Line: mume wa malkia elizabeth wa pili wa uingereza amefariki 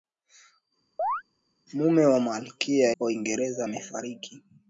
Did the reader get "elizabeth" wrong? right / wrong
wrong